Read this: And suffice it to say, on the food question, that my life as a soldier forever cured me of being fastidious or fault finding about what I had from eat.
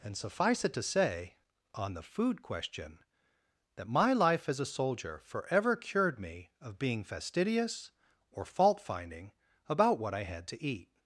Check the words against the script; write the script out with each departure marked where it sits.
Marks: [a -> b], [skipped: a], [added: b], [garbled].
And suffice it to say, on the food question, that my life as a soldier forever cured me of being fastidious or fault finding about what I had [from -> to] eat.